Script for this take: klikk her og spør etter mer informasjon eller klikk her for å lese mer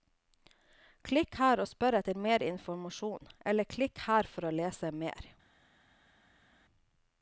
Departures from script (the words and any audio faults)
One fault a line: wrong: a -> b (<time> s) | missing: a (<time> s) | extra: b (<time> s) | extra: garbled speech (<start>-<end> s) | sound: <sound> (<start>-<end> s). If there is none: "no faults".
no faults